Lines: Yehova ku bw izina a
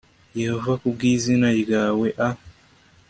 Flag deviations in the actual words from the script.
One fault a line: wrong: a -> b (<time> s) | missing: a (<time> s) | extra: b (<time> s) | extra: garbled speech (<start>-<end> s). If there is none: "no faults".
extra: ryawe (1.6 s)